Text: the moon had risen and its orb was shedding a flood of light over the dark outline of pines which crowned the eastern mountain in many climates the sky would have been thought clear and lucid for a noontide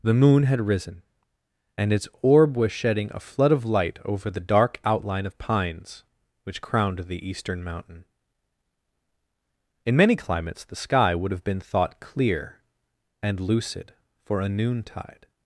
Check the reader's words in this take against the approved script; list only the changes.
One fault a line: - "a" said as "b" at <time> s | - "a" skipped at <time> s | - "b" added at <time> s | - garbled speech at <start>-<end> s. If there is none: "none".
none